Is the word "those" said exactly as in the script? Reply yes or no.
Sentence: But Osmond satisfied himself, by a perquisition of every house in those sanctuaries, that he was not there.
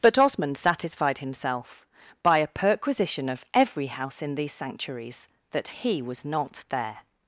no